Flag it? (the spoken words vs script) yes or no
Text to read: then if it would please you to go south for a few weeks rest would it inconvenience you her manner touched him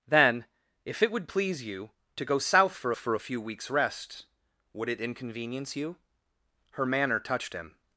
yes